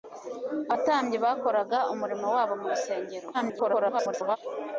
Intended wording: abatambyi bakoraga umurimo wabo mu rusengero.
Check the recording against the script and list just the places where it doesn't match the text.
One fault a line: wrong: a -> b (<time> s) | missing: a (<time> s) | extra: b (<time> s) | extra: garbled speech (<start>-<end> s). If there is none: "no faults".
extra: garbled speech (3.3-4.4 s)